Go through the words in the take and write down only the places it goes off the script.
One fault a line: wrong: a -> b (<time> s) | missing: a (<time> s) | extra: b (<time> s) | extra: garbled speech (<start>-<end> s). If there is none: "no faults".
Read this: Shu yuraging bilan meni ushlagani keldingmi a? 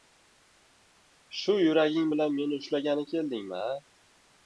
no faults